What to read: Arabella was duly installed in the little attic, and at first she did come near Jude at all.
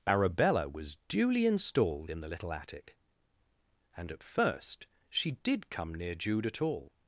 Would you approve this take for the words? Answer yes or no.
yes